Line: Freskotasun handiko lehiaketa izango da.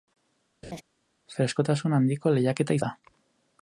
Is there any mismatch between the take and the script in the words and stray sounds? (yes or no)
yes